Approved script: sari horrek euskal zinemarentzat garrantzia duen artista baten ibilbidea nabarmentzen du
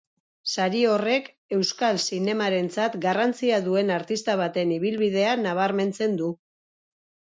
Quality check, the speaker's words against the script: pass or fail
pass